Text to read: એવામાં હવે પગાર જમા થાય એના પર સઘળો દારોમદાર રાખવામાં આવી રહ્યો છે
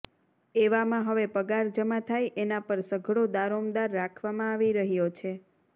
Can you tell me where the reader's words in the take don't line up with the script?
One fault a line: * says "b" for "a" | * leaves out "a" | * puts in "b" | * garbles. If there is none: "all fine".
all fine